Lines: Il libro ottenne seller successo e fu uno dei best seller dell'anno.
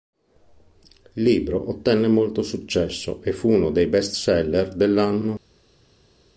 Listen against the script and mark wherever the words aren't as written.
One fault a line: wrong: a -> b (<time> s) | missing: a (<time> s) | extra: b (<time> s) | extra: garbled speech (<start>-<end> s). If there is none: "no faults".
wrong: seller -> molto (2.1 s)